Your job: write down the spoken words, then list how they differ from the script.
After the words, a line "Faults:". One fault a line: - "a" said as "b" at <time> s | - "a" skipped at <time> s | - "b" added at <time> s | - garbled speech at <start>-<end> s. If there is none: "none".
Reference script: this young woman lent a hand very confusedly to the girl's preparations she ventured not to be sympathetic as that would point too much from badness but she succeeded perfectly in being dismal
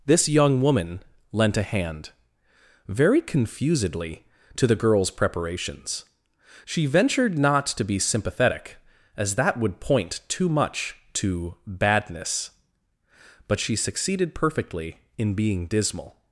this young woman lent a hand very confusedly to the girl's preparations she ventured not to be sympathetic as that would point too much to badness but she succeeded perfectly in being dismal
Faults:
- "from" said as "to" at 11.1 s